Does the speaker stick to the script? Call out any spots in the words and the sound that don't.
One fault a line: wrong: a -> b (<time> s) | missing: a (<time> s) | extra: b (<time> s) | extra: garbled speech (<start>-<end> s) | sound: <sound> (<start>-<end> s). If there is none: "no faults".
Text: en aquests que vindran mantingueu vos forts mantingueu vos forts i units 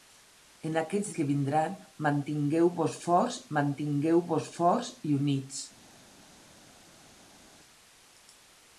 no faults